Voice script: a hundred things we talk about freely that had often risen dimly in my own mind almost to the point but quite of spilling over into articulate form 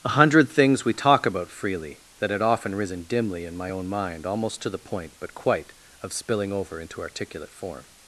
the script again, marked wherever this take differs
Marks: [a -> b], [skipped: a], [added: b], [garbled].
a hundred things we talk about freely that had often risen dimly in my own mind almost to the point but quite of spilling over into articulate form